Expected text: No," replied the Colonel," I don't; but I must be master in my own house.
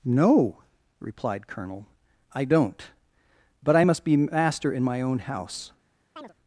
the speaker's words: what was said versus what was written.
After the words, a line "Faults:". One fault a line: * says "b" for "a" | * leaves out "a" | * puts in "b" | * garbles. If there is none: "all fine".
No," replied Colonel," I don't; but I must be master in my own house.
Faults:
* leaves out "the"